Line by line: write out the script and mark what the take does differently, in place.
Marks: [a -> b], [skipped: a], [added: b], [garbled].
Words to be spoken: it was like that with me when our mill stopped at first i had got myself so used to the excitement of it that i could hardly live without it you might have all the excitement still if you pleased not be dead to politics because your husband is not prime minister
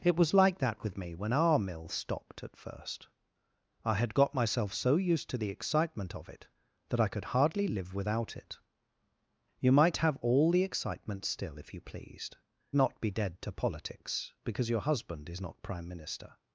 it was like that with me when our mill stopped at first i had got myself so used to the excitement of it that i could hardly live without it you might have all the excitement still if you pleased not be dead to politics because your husband is not prime minister